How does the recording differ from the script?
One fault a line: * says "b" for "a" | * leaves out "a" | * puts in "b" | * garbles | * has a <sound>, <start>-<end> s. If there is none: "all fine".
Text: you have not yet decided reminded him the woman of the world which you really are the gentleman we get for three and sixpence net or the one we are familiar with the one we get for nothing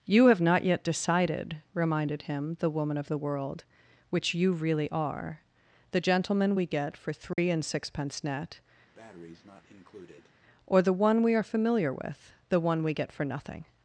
* has a dropout, 7.3-7.4 s
* has a breath, 8.9-10.3 s